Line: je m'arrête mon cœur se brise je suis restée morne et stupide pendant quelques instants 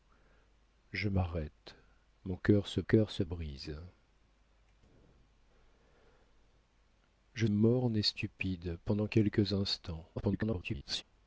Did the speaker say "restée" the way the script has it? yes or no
no